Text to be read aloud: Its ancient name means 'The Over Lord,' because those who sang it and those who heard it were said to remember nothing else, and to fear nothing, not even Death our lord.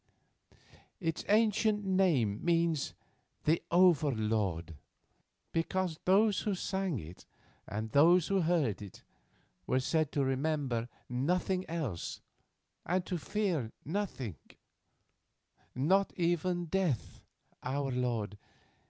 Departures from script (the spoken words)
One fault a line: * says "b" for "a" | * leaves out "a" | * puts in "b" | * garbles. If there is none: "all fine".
all fine